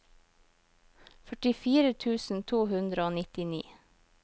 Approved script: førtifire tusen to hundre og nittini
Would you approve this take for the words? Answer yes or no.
yes